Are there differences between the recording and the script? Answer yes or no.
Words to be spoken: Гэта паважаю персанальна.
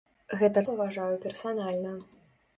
no